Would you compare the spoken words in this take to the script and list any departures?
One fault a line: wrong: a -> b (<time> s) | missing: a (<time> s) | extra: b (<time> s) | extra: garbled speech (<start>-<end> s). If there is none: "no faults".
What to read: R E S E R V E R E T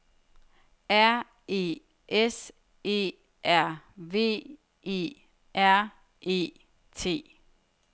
no faults